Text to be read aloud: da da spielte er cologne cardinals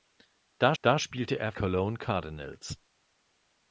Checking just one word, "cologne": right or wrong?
right